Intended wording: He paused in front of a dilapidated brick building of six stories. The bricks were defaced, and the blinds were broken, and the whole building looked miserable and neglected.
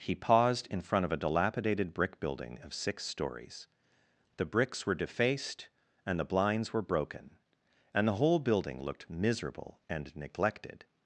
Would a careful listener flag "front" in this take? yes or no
no